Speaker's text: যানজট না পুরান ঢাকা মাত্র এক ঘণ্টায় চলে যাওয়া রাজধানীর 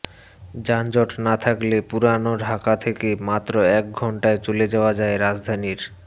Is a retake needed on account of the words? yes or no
yes